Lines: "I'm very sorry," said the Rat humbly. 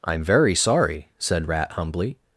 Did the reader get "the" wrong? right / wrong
wrong